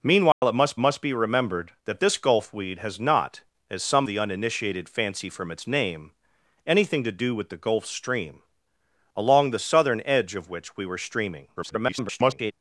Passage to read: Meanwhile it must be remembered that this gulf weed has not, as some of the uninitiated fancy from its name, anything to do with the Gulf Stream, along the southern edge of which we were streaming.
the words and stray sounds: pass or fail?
fail